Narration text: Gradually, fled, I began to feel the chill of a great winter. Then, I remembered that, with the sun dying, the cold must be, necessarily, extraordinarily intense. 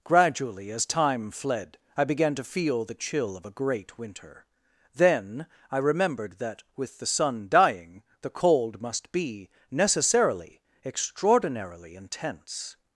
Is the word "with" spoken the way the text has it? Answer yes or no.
yes